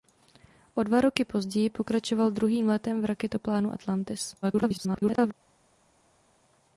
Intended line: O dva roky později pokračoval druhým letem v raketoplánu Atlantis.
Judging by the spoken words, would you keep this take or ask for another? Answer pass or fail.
fail